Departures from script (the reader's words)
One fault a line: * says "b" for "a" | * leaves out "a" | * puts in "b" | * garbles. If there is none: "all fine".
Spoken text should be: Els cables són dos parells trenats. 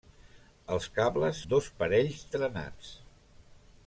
* leaves out "són"